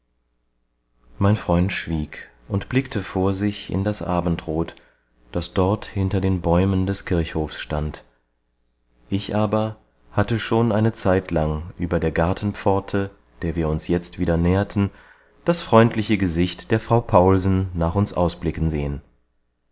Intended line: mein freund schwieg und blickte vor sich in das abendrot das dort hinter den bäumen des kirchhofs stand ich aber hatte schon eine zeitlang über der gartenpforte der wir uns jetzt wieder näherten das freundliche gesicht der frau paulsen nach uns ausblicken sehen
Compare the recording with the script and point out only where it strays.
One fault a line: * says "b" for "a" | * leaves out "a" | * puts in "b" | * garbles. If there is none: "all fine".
all fine